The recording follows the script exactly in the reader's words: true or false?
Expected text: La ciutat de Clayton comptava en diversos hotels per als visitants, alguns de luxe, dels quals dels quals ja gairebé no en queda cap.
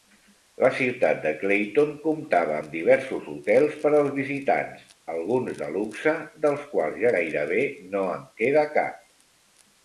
false